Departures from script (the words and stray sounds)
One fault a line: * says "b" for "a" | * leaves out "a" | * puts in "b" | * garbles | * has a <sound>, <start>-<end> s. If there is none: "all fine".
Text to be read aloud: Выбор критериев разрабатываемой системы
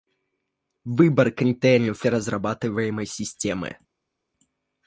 all fine